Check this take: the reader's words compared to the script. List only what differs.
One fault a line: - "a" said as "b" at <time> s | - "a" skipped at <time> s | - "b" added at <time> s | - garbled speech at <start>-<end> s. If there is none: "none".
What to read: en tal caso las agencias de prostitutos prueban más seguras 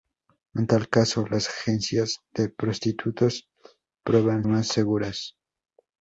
none